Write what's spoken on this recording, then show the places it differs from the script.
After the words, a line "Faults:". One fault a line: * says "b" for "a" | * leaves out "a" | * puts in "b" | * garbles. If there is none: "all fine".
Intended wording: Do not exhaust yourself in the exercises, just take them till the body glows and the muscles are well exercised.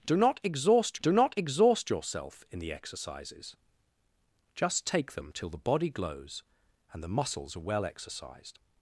Do not exhaust do not exhaust yourself in the exercises, just take them till the body glows and the muscles are well exercised.
Faults:
* puts in "do not exhaust"